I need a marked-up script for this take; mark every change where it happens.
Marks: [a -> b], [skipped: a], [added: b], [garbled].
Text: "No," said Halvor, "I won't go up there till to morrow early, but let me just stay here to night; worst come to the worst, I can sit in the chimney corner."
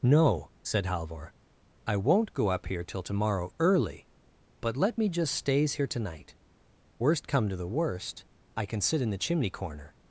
"No," said Halvor, "I won't go up [there -> here] till to morrow early, but let me just [stay -> stays] here to night; worst come to the worst, I can sit in the chimney corner."